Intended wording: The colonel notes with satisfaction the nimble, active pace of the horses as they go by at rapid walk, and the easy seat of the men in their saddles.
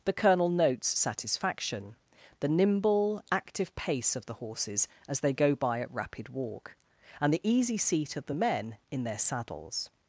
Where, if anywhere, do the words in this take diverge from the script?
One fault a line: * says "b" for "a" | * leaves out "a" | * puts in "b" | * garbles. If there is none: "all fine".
* leaves out "with"